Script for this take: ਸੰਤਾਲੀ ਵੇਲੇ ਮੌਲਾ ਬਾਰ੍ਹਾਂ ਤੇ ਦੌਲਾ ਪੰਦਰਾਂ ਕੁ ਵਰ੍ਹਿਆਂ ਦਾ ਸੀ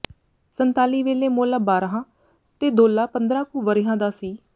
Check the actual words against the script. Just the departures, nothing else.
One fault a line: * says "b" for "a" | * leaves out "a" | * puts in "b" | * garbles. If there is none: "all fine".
all fine